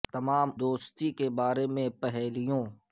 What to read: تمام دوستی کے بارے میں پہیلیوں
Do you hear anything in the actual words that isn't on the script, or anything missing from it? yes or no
no